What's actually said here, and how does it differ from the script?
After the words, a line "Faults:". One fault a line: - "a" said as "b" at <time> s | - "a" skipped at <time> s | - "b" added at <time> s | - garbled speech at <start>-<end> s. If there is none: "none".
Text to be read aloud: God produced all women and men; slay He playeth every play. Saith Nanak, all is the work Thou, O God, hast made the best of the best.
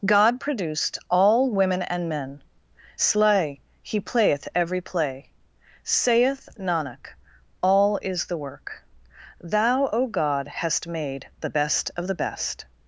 God produced all women and men; slay He playeth every play. Saith Nanak, all is the work Thou, O God, hast made the best of the best.
Faults:
none